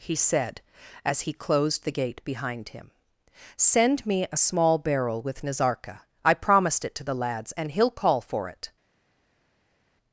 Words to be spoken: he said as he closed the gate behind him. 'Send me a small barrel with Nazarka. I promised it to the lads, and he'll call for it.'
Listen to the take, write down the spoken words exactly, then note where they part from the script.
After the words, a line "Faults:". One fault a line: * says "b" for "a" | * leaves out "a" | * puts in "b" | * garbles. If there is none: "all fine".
he said as he closed the gate behind him. 'Send me a small barrel with Nazarka. I promised it to the lads, and he'll call for it.'
Faults:
all fine